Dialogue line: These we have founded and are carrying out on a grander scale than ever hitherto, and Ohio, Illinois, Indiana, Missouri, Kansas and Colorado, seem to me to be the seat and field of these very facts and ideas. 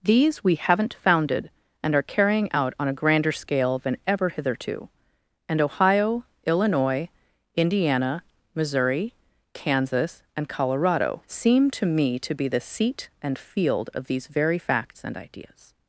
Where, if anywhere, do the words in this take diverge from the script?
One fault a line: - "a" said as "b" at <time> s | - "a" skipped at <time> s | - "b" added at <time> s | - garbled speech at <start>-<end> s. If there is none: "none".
- "have" said as "haven't" at 0.6 s